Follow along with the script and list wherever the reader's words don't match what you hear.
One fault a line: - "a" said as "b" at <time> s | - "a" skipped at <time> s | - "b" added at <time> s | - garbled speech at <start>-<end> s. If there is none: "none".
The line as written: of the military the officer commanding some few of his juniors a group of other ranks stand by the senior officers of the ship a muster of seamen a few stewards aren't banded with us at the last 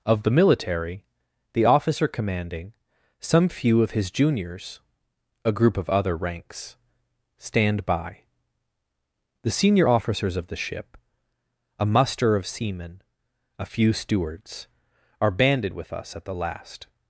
- "aren't" said as "are" at 15.2 s